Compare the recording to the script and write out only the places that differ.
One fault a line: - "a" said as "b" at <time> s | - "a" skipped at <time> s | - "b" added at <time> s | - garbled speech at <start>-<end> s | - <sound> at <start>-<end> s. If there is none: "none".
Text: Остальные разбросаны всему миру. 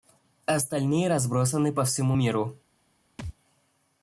- "по" added at 1.7 s
- thud at 3.2-3.3 s